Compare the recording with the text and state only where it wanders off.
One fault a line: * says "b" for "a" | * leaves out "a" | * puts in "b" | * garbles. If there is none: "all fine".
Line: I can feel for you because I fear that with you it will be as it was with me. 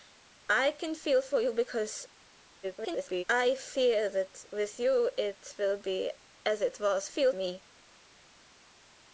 * garbles
* says "feel" for "with"